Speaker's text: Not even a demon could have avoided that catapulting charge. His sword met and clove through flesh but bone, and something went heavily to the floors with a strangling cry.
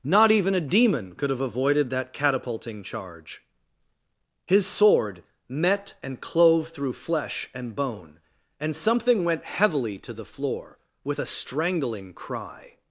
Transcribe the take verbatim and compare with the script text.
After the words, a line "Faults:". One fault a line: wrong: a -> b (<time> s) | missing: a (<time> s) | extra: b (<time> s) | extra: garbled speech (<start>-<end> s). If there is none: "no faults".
Not even a demon could have avoided that catapulting charge. His sword met and clove through flesh and bone, and something went heavily to the floor with a strangling cry.
Faults:
wrong: but -> and (7.5 s)
wrong: floors -> floor (10.2 s)